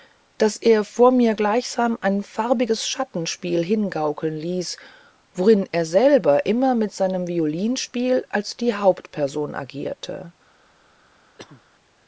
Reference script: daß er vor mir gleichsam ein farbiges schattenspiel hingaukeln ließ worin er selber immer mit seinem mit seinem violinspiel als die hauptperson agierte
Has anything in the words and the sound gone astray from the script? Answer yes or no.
yes